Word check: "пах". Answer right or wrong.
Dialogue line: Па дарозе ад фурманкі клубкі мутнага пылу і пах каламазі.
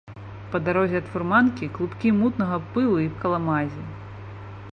wrong